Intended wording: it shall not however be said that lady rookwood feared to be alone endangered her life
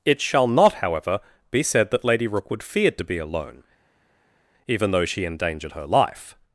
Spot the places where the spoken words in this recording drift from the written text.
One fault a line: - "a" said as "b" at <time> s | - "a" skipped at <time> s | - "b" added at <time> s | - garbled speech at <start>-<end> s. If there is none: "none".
- "even though she" added at 4.7 s